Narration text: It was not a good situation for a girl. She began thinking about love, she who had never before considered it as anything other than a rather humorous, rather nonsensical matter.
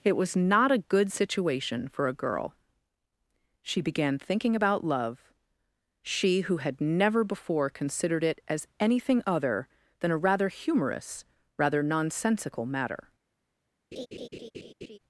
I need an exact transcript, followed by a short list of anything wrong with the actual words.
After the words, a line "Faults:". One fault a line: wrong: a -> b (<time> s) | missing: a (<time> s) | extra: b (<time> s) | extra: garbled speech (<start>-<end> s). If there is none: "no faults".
It was not a good situation for a girl. She began thinking about love, she who had never before considered it as anything other than a rather humorous, rather nonsensical matter.
Faults:
no faults